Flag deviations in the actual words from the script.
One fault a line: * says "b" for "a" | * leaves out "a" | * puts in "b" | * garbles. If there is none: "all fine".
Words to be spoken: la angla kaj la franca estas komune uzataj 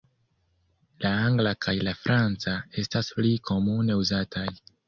* puts in "pli"